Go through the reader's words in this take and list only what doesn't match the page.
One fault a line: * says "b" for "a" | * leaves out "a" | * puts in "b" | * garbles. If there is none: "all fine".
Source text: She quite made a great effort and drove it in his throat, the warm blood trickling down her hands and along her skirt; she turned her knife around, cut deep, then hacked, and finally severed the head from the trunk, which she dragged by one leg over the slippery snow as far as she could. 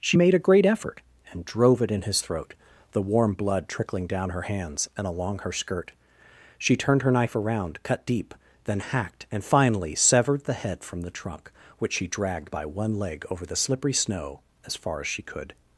* leaves out "quite"